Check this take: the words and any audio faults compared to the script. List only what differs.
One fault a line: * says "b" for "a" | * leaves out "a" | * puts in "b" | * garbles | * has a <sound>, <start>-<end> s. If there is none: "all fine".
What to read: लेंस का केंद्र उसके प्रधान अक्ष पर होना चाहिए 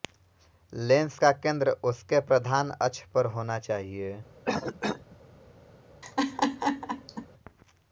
* has a cough, 4.5-5.2 s
* has a laugh, 6.0-7.3 s